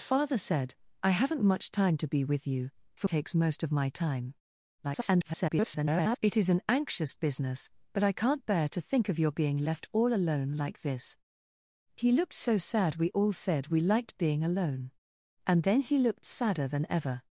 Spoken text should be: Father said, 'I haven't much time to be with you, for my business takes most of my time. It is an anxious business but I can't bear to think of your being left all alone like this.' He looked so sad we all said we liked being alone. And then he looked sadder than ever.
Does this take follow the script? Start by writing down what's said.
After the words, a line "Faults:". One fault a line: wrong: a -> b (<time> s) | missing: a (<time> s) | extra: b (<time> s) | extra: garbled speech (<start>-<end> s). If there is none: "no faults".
Father said, 'I haven't much time to be with you, for takes most of my time. [garbled] It is an anxious business but I can't bear to think of your being left all alone like this.' He looked so sad we all said we liked being alone. And then he looked sadder than ever.
Faults:
missing: my business (3.1 s)
extra: garbled speech (4.8-6.2 s)